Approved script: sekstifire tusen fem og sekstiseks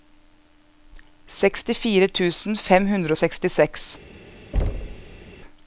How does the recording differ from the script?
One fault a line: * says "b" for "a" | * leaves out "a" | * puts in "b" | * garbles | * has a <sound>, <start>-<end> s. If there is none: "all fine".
* puts in "hundre"
* has a thud, 4.5-5.3 s